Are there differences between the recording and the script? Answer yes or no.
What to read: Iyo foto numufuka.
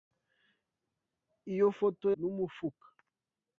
no